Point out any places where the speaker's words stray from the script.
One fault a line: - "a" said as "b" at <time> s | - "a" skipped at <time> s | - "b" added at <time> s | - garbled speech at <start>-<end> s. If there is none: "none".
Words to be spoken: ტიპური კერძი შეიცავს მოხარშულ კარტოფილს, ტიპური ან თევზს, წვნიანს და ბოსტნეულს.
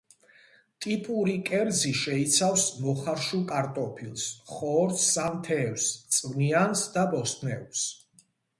- "ტიპური" said as "ხორცს" at 4.5 s